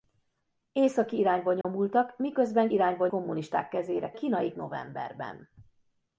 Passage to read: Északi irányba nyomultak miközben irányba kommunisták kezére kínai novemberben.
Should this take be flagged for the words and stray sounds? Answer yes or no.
yes